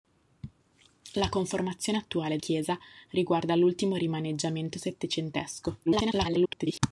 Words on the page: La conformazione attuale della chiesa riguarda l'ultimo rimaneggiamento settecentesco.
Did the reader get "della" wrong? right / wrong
wrong